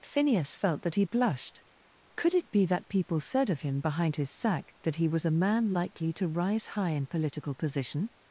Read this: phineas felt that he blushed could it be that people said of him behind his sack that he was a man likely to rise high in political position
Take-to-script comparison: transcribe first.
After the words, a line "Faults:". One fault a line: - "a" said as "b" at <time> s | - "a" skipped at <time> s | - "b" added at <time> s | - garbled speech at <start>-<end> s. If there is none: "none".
phineas felt that he blushed could it be that people said of him behind his sack that he was a man likely to rise high in political position
Faults:
none